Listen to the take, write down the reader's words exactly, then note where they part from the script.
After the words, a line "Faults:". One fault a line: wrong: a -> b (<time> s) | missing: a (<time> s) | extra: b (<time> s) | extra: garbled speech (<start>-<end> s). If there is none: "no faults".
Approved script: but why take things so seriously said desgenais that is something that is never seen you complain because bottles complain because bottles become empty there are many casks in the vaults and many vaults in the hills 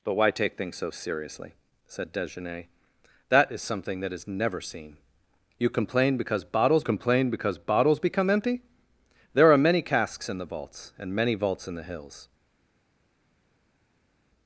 but why take things so seriously said desgenais that is something that is never seen you complain because bottles complain because bottles become empty there are many casks in the vaults and many vaults in the hills
Faults:
no faults